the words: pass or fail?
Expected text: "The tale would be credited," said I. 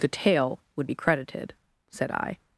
pass